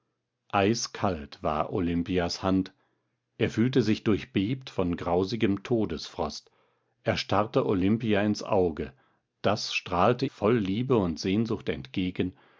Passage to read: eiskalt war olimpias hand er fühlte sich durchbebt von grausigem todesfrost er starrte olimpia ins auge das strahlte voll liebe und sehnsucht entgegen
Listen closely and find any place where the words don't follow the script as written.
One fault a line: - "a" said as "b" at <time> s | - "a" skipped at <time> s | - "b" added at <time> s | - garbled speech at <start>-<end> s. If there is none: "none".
none